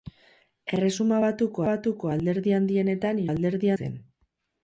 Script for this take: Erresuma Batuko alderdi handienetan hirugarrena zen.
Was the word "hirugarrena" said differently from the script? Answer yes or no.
yes